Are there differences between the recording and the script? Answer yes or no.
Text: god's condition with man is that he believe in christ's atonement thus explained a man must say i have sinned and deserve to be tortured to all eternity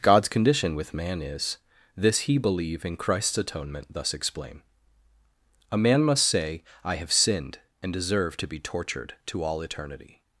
yes